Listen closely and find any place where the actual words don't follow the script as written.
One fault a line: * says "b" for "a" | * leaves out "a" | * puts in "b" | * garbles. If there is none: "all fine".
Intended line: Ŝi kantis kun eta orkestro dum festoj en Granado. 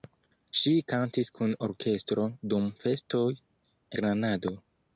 * leaves out "eta"
* leaves out "en"